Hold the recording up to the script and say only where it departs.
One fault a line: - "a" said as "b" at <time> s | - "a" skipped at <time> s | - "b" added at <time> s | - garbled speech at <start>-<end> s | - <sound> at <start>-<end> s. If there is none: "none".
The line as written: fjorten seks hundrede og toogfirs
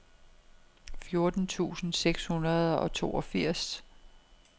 - "tusind" added at 1.5 s